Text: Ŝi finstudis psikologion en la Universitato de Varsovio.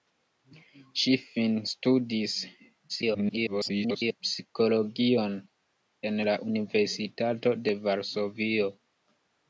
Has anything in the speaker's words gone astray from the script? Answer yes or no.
yes